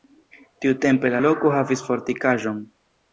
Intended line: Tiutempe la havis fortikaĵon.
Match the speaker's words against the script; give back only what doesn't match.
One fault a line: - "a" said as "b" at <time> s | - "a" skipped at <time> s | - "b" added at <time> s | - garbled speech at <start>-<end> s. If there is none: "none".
- "loko" added at 1.2 s